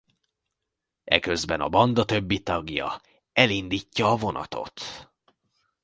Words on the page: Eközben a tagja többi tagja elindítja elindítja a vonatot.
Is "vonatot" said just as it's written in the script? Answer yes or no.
yes